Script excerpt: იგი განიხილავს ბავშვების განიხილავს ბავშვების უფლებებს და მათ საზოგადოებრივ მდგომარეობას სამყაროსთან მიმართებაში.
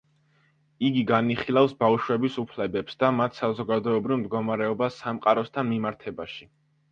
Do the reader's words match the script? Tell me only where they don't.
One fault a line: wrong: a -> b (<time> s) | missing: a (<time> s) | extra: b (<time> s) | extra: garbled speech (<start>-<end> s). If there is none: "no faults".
missing: განიხილავს ბავშვების (2.4 s)